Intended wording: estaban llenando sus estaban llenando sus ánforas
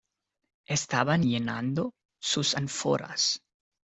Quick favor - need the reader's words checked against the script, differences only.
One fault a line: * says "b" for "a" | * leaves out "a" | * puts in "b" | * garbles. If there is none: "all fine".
* leaves out "estaban llenando sus"